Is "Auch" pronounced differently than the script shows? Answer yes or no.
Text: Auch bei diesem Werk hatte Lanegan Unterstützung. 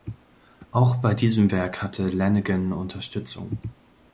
no